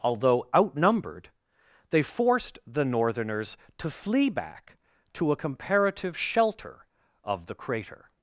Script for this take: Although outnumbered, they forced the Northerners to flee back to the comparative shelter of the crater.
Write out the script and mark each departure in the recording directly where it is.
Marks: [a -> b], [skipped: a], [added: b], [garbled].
Although outnumbered, they forced the Northerners to flee back to [the -> a] comparative shelter of the crater.